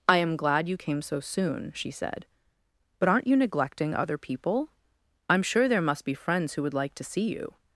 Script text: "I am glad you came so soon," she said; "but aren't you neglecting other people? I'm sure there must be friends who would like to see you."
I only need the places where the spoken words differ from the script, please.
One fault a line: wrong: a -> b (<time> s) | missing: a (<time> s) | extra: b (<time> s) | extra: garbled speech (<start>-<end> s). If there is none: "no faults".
no faults